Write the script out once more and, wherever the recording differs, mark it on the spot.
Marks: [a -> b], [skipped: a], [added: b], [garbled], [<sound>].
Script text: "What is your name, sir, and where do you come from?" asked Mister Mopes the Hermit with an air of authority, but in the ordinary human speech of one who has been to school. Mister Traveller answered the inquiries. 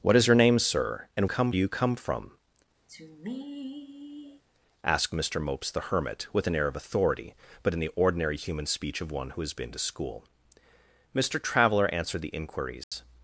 "What is your name, sir, and [where -> come] do you come from?" [sigh] asked Mister Mopes the Hermit with an air of authority, but in the ordinary human speech of one who has been to school. Mister Traveller answered the inquiries. [dropout]